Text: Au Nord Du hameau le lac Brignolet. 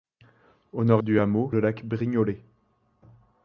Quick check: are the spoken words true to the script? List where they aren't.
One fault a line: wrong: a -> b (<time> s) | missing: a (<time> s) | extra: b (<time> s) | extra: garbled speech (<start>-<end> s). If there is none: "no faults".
no faults